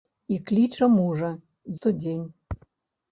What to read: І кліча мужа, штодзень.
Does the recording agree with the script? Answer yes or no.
yes